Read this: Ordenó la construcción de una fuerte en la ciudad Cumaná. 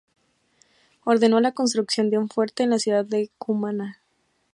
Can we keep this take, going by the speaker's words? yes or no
no